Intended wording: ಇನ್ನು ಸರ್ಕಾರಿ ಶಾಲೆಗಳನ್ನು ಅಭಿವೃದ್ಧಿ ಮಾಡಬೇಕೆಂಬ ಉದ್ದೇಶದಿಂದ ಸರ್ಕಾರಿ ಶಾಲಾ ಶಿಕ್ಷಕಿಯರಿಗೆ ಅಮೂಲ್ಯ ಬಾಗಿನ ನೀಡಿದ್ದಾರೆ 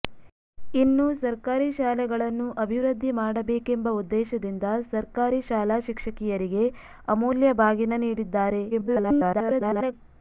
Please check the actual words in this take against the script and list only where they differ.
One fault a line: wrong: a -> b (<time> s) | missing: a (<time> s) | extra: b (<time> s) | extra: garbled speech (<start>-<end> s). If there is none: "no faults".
extra: garbled speech (8.7-9.9 s)